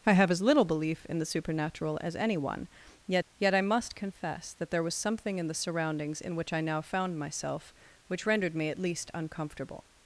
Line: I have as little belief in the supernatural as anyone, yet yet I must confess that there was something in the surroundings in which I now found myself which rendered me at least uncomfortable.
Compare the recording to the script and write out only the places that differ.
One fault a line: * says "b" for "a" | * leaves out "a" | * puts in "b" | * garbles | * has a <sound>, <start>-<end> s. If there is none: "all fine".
all fine